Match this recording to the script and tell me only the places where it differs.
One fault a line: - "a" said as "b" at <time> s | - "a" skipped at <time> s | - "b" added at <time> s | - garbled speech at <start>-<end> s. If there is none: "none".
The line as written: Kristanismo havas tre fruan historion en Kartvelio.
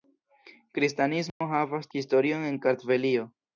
- "tre fruan" skipped at 1.9 s